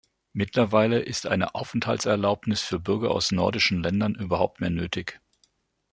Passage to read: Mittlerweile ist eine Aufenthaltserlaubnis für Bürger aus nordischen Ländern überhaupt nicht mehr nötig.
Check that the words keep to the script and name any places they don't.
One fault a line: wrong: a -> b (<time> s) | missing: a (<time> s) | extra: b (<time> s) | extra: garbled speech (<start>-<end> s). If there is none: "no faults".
missing: nicht (4.6 s)